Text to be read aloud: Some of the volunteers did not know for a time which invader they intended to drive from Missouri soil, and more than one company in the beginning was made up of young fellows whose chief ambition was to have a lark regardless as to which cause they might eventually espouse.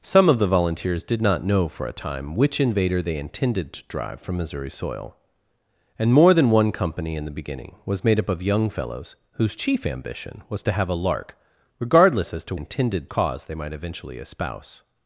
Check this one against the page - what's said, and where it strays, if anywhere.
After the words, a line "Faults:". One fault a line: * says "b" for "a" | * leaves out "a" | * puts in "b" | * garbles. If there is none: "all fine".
Some of the volunteers did not know for a time which invader they intended to drive from Missouri soil, and more than one company in the beginning was made up of young fellows whose chief ambition was to have a lark regardless as to intended cause they might eventually espouse.
Faults:
* says "intended" for "which"